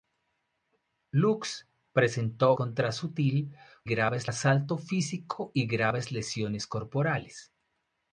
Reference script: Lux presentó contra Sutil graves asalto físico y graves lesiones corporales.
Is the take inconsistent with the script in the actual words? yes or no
no